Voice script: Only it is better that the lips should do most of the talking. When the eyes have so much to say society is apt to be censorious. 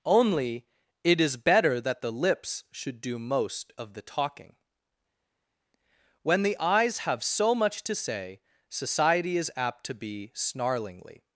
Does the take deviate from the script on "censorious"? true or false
true